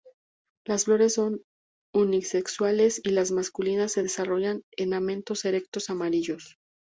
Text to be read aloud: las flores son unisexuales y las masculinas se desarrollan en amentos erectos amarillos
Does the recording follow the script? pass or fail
pass